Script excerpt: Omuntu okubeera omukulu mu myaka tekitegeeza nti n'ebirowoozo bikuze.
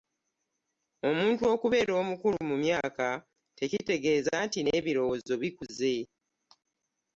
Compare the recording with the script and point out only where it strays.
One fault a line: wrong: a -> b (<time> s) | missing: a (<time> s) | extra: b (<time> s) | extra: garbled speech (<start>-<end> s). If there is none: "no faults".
no faults